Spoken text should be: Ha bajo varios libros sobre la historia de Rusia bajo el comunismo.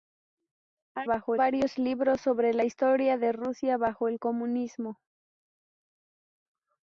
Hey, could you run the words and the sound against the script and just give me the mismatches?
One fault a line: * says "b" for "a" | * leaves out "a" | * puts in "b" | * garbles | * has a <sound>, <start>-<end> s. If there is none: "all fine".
all fine